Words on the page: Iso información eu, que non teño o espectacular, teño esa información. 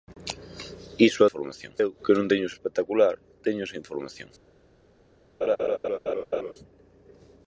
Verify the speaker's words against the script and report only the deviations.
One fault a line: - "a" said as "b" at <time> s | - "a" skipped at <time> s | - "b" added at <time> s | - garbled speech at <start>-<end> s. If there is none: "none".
none